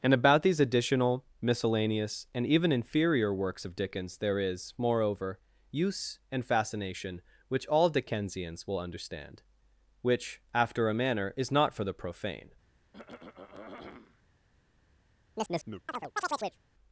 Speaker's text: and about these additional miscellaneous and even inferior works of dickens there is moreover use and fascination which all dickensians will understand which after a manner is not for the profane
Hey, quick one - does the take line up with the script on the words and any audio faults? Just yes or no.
no